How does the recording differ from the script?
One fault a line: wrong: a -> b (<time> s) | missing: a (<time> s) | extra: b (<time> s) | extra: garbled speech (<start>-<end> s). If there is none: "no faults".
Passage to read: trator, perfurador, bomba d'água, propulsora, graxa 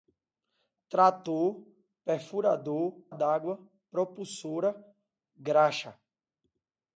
missing: bomba (3.0 s)